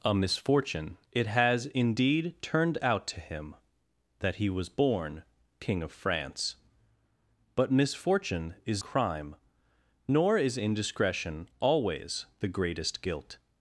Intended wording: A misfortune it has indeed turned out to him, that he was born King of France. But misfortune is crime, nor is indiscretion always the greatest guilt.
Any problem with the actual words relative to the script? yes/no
no